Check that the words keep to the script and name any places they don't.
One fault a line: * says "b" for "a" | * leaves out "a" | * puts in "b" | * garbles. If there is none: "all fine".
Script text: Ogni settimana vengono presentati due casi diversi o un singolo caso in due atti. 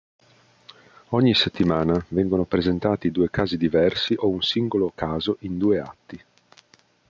all fine